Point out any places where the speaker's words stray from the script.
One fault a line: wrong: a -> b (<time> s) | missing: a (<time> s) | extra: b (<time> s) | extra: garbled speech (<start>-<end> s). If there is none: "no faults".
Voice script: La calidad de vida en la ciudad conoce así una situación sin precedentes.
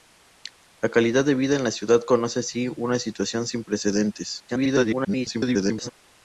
extra: garbled speech (4.5-5.9 s)